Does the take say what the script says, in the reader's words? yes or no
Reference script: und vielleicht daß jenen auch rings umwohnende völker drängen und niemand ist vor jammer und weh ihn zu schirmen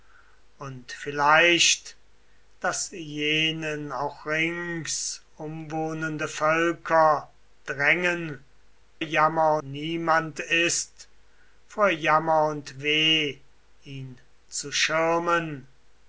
no